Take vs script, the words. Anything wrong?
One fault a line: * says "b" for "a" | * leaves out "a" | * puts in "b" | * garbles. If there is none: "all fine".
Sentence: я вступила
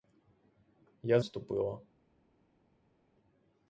all fine